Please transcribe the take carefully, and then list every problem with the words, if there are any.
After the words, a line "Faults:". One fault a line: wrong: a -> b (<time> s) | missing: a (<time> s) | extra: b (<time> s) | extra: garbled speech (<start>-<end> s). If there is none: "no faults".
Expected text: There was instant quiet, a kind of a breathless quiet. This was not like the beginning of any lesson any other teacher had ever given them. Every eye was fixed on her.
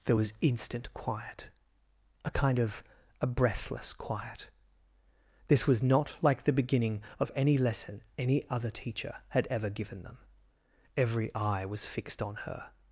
There was instant quiet, a kind of a breathless quiet. This was not like the beginning of any lesson any other teacher had ever given them. Every eye was fixed on her.
Faults:
no faults